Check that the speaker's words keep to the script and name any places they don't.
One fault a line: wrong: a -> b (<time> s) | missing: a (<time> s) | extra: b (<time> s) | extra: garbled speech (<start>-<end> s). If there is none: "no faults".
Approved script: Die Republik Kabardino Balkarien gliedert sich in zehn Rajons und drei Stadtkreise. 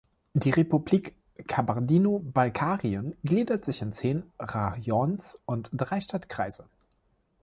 no faults